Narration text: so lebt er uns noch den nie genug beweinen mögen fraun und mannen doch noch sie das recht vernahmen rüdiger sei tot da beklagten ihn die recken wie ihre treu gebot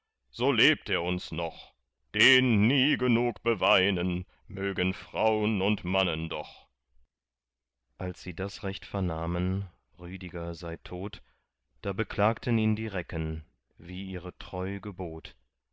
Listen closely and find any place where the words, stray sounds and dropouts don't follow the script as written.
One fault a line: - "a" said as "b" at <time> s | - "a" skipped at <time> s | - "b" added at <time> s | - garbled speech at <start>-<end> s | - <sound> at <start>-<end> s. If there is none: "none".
- "noch" said as "als" at 8.0 s